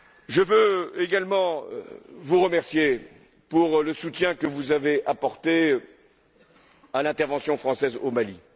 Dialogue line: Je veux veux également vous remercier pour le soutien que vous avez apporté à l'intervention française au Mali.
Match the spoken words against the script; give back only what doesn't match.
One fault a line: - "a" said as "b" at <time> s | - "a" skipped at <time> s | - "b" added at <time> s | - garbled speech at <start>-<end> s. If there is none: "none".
- "veux" skipped at 0.9 s